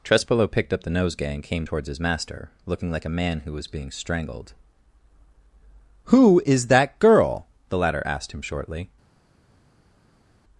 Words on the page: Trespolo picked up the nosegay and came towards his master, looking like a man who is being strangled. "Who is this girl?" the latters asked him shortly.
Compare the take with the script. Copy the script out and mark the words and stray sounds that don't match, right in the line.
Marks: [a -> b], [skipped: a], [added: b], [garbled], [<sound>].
Trespolo picked up the nosegay and came towards his master, looking like a man who [is -> was] being strangled. "Who is [this -> that] girl?" the [latters -> latter] asked him shortly.